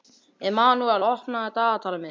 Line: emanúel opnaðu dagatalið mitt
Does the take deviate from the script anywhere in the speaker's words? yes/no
no